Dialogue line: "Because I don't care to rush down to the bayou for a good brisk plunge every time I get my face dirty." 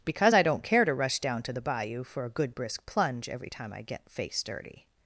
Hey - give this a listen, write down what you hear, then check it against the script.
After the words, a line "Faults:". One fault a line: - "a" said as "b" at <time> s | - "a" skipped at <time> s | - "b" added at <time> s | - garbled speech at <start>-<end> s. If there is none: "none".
"Because I don't care to rush down to the bayou for a good brisk plunge every time I get face dirty."
Faults:
- "my" skipped at 4.1 s